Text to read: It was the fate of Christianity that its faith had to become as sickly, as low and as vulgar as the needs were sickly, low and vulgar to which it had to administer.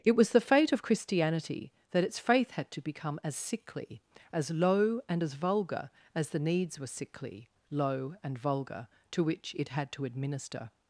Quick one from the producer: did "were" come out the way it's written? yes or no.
yes